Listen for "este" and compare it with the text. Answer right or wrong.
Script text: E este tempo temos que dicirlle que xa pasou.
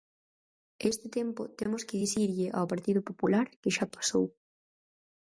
right